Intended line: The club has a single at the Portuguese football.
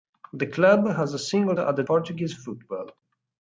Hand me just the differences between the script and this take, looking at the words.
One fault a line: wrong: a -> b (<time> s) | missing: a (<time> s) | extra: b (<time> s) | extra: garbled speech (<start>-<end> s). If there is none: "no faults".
no faults